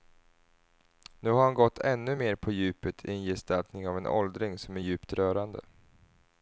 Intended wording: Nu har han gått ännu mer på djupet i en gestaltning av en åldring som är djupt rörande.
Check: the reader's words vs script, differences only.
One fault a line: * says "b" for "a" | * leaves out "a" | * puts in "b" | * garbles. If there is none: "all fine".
all fine